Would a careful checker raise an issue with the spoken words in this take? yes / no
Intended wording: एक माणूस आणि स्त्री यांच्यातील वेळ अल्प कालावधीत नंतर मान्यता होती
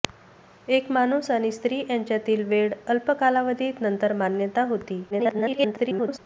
yes